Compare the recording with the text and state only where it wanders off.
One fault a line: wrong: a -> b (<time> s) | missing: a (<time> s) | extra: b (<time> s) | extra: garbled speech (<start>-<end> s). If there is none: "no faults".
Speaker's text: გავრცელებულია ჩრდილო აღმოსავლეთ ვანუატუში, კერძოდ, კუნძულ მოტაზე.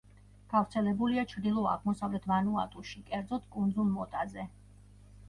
no faults